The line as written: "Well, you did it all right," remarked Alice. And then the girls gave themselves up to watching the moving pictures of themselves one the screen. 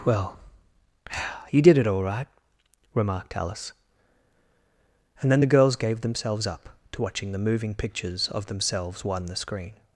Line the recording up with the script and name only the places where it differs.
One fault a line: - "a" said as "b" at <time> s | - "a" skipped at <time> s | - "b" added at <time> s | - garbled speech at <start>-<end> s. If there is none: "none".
none